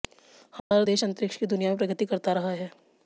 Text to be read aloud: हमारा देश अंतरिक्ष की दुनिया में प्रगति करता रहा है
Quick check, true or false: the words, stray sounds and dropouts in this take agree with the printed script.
false